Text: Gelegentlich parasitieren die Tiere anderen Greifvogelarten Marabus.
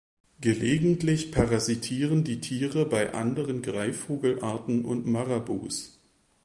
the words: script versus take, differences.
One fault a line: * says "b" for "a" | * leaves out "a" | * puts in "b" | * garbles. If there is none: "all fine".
* puts in "bei"
* puts in "und"